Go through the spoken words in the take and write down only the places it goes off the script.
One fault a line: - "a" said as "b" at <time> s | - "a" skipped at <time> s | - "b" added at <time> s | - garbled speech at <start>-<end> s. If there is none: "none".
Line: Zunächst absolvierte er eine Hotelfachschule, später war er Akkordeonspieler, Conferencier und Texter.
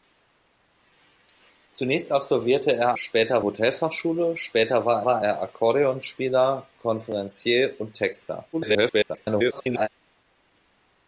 - "eine" said as "später" at 2.9 s
- "war" added at 5.0 s
- garbled speech at 8.5-9.9 s